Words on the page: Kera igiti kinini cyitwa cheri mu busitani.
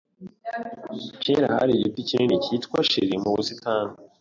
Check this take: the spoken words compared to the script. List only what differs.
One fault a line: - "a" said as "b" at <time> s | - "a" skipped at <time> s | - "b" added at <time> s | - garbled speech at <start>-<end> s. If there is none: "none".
- "hari" added at 1.6 s